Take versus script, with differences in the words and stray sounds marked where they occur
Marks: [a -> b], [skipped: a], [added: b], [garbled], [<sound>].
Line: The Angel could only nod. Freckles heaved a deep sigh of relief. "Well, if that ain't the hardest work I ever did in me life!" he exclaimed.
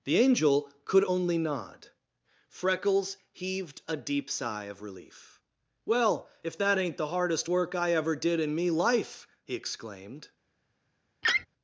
The Angel could only nod. Freckles heaved a deep sigh of relief. "Well, if that ain't the hardest work I ever did in me life!" he exclaimed. [laugh]